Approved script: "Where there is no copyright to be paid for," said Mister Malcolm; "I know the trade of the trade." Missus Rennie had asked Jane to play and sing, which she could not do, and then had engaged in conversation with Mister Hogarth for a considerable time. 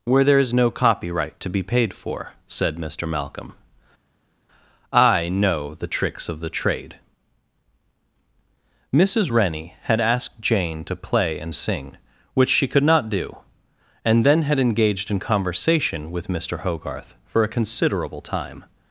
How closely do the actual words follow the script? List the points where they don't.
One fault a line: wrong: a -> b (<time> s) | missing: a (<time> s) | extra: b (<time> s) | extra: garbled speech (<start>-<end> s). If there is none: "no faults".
wrong: trade -> tricks (5.9 s)